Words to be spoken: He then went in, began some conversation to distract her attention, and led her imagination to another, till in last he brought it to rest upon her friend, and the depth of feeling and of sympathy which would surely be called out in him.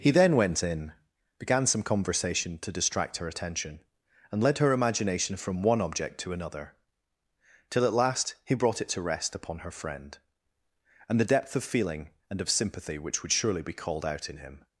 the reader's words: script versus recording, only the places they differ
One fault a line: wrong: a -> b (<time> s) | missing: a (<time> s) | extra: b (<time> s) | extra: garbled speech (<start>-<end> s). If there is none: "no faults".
extra: from one object (5.4 s)
wrong: in -> at (7.8 s)